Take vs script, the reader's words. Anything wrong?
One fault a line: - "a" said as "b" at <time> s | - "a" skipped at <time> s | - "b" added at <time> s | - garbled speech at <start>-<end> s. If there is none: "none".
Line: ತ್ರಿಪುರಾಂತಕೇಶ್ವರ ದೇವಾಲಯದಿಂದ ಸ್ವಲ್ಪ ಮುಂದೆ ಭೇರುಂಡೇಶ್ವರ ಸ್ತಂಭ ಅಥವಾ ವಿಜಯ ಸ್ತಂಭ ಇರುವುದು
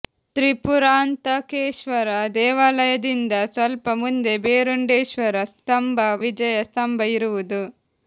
- "ಅಥವಾ" skipped at 6.0 s